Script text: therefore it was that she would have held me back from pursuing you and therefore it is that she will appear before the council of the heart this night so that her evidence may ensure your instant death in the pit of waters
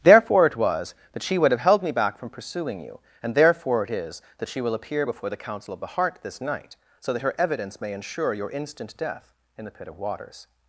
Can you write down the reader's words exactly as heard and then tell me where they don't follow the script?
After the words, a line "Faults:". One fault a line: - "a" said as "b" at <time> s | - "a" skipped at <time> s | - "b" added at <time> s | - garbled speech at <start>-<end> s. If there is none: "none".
therefore it was that she would have held me back from pursuing you and therefore it is that she will appear before the council of the heart this night so that her evidence may ensure your instant death in the pit of waters
Faults:
none